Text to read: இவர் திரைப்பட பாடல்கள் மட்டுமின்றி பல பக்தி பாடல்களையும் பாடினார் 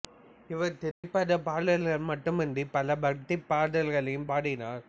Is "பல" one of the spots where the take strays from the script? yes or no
no